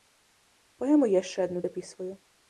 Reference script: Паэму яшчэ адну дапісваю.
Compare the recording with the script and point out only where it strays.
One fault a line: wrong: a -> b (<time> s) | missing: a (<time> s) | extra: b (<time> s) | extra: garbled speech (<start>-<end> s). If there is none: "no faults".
no faults